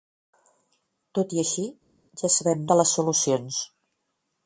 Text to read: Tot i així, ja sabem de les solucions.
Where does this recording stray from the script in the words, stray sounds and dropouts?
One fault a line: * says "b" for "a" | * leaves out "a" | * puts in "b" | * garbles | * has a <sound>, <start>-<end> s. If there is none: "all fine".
all fine